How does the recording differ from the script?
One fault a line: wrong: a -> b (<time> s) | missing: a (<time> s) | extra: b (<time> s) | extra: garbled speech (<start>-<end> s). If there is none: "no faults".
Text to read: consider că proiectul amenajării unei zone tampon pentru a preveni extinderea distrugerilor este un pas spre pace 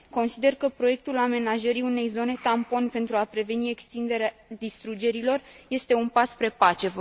no faults